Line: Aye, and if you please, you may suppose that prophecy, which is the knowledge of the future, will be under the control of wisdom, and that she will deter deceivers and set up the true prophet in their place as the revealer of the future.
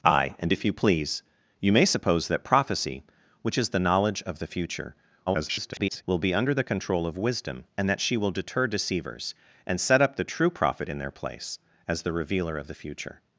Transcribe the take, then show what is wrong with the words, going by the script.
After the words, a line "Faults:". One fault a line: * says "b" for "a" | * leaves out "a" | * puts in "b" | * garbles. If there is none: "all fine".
Aye, and if you please, you may suppose that prophecy, which is the knowledge of the future, [garbled] will be under the control of wisdom, and that she will deter deceivers and set up the true prophet in their place as the revealer of the future.
Faults:
* garbles